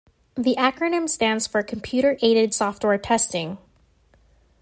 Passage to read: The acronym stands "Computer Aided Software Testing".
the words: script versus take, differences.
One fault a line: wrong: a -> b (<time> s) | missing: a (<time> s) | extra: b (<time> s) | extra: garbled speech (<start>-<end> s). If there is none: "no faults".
extra: for (1.4 s)